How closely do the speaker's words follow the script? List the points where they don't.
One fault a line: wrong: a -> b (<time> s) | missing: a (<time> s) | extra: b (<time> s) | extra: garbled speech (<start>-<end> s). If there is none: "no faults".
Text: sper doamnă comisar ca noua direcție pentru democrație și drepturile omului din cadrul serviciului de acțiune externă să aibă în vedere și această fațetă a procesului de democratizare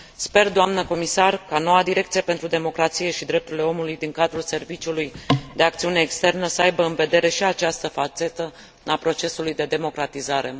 no faults